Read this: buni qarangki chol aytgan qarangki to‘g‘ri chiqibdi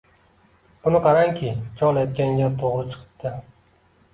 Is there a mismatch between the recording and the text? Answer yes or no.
yes